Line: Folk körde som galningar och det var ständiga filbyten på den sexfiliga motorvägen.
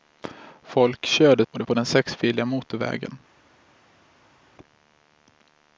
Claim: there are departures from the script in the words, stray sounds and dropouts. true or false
true